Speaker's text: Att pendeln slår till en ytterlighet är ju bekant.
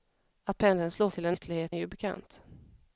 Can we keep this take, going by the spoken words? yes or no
yes